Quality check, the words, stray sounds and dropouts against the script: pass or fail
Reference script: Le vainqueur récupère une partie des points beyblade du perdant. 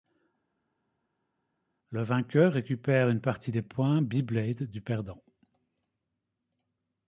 pass